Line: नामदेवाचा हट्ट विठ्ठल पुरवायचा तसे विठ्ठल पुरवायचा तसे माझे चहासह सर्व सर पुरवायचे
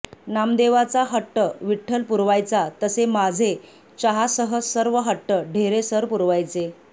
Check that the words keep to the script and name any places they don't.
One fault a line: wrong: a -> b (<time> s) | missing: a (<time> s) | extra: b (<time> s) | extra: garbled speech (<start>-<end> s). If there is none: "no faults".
missing: विठ्ठल पुरवायचा तसे (3.0 s)
extra: हट्ट ढेरे (5.0 s)